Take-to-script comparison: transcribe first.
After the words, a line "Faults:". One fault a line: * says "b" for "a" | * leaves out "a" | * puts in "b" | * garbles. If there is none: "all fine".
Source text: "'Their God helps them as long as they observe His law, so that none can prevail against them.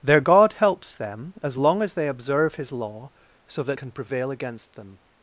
"'Their God helps them as long as they observe His law, so that can prevail against them.
Faults:
* leaves out "none"